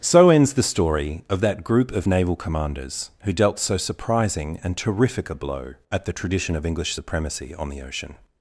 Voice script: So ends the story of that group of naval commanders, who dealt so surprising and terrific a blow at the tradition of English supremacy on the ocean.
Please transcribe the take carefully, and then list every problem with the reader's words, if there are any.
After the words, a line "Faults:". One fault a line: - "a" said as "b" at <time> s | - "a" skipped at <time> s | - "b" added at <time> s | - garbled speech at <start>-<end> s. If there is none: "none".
So ends the story of that group of naval commanders, who dealt so surprising and terrific a blow at the tradition of English supremacy on the ocean.
Faults:
none